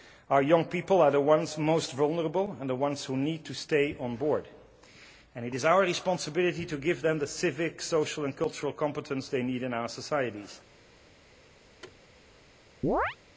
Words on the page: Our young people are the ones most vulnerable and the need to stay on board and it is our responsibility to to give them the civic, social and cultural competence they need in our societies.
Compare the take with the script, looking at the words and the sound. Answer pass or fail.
fail